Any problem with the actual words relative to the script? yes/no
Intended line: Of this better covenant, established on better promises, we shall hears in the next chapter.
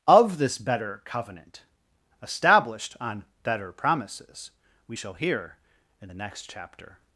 yes